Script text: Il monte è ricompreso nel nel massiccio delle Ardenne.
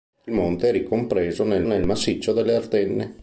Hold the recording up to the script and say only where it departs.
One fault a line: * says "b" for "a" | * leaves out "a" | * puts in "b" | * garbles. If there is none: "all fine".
all fine